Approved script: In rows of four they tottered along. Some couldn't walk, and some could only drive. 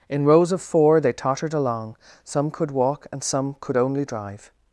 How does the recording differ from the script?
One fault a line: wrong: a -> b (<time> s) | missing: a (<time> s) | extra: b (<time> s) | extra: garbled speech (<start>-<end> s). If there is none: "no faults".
wrong: couldn't -> could (2.5 s)